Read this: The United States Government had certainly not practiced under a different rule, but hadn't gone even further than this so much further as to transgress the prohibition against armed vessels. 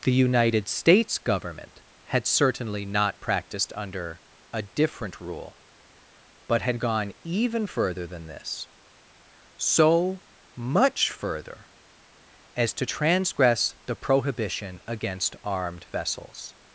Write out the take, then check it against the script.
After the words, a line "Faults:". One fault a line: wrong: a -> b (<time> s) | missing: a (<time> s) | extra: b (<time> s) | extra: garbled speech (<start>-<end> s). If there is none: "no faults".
The United States Government had certainly not practiced under a different rule, but had gone even further than this so much further as to transgress the prohibition against armed vessels.
Faults:
wrong: hadn't -> had (6.6 s)